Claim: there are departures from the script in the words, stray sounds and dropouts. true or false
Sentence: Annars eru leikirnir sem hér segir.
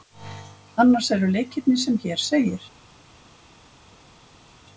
false